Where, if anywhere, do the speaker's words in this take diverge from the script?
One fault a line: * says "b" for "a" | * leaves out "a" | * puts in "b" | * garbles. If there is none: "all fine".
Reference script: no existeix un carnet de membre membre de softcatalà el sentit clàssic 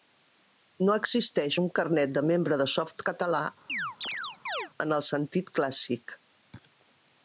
* leaves out "membre"
* puts in "en"